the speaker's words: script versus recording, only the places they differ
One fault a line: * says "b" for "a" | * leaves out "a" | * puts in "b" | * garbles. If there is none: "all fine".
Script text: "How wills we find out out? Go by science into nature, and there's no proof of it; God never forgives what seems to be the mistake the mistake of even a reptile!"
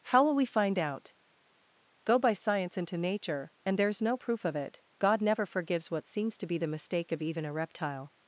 * says "will" for "wills"
* leaves out "out"
* leaves out "the mistake"